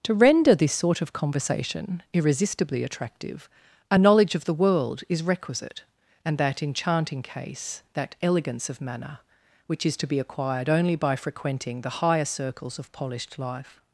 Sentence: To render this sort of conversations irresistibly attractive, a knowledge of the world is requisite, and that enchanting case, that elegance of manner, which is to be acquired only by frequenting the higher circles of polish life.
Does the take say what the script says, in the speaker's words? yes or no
no